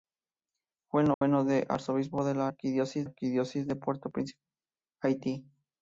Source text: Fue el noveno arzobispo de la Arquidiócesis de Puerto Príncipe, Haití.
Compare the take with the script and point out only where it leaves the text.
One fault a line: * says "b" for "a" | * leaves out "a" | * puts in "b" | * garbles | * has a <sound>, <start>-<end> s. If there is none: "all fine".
* has a dropout, 1.1-1.2 s
* puts in "Arquidiócesis"